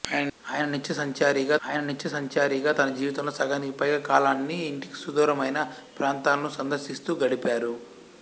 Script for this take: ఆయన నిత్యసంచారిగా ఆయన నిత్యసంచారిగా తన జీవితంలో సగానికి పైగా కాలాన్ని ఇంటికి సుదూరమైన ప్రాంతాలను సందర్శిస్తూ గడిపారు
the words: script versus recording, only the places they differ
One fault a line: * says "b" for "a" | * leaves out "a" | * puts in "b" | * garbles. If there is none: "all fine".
all fine